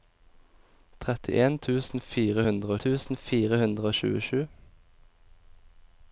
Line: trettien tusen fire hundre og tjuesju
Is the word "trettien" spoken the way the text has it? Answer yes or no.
yes